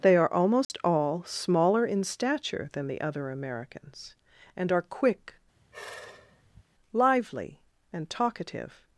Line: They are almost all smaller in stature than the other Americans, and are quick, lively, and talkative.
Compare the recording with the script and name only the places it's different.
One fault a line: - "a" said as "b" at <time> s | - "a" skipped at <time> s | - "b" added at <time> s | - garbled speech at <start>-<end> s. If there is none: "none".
none